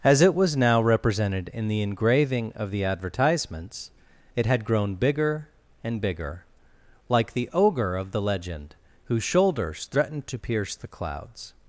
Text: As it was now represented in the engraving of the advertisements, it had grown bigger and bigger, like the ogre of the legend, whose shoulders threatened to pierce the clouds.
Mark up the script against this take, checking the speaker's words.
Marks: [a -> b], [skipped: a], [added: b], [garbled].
As it was now represented in the engraving of the advertisements, it had grown bigger and bigger, like the ogre of the legend, whose shoulders threatened to pierce the clouds.